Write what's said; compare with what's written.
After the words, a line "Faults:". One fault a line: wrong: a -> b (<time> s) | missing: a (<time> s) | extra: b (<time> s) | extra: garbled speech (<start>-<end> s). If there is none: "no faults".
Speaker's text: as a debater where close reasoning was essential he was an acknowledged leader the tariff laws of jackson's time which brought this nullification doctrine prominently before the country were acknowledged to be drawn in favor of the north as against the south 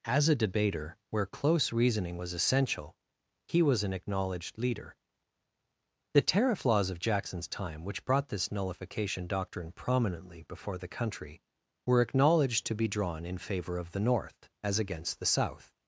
as a debater where close reasoning was essential he was an acknowledged leader the tariff laws of jackson's time which brought this nullification doctrine prominently before the country were acknowledged to be drawn in favor of the north as against the south
Faults:
no faults